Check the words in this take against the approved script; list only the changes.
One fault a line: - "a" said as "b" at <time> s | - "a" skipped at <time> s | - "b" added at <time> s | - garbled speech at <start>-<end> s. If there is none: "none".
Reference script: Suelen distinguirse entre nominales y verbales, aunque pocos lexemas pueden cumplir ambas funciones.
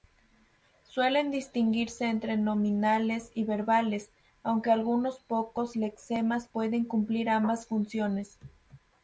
- "algunos" added at 4.7 s